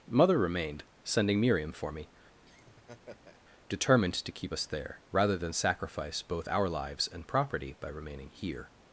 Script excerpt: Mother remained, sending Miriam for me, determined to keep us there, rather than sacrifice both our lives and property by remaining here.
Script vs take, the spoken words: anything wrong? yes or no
no